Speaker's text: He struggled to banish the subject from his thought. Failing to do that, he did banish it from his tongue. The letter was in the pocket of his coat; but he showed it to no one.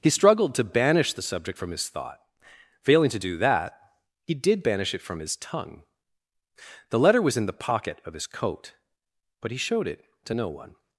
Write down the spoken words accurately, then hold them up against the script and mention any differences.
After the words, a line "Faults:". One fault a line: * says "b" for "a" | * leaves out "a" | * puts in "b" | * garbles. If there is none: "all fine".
He struggled to banish the subject from his thought. Failing to do that, he did banish it from his tongue. The letter was in the pocket of his coat; but he showed it to no one.
Faults:
all fine